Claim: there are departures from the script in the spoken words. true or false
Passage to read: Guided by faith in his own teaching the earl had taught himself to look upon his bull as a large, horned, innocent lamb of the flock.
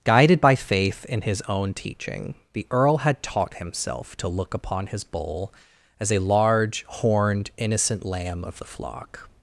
false